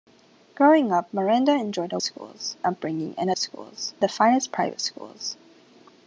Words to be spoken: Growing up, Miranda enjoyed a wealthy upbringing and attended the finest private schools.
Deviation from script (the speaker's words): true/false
true